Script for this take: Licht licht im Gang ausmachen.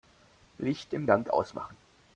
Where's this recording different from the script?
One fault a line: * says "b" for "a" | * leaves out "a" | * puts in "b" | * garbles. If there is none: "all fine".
* leaves out "licht"